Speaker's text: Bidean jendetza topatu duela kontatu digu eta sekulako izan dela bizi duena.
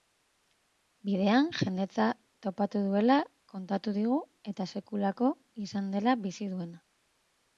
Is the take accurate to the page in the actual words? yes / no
yes